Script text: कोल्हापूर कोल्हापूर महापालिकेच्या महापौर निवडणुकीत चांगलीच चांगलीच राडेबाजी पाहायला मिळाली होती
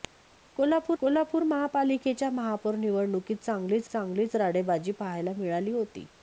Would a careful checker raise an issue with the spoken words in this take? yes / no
no